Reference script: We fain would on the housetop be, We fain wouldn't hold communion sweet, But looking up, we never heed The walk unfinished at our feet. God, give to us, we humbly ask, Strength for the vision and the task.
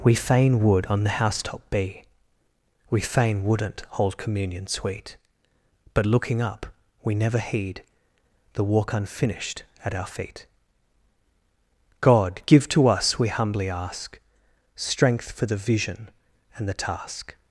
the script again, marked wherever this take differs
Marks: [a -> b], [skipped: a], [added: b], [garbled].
We fain would on the housetop be, We fain wouldn't hold communion sweet, But looking up, we never heed The walk unfinished at our feet. God, give to us, we humbly ask, Strength for the vision and the task.